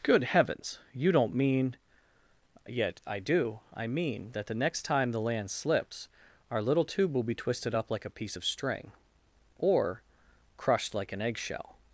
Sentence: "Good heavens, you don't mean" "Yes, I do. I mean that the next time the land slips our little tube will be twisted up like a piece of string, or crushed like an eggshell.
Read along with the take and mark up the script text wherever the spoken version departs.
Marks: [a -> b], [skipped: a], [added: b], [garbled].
"Good heavens, you don't mean" ["Yes, -> Yet] I do. I mean that the next time the land slips our little tube will be twisted up like a piece of string, or crushed like an eggshell.